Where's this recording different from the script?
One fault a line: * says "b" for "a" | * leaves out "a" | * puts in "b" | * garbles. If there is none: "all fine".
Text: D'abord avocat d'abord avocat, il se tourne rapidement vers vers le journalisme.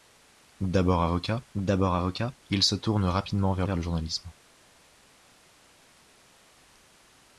all fine